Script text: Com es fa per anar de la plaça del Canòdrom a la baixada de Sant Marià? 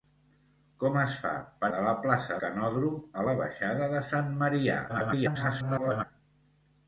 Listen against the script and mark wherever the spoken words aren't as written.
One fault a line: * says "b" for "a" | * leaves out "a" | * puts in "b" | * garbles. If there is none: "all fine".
* leaves out "anar"
* leaves out "del"
* garbles